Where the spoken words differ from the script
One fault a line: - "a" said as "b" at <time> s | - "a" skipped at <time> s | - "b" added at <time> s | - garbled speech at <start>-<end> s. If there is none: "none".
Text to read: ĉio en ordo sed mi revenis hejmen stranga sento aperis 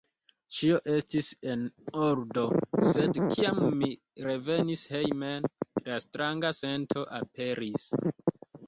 - "estis" added at 0.9 s
- "kiam" added at 3.4 s
- "la" added at 5.9 s